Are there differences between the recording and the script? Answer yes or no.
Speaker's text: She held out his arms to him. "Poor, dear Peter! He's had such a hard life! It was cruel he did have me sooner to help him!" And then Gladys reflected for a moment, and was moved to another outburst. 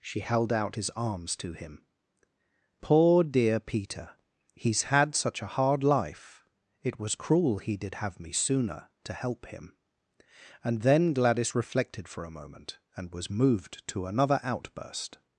no